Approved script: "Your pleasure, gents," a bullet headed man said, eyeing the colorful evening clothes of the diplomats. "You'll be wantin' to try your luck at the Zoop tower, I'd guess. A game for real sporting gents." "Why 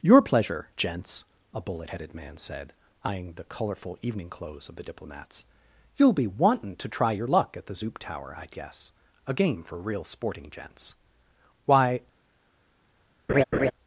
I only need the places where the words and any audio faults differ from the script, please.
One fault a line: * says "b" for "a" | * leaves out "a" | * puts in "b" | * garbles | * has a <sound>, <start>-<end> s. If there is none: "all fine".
* has a laugh, 13.3-13.7 s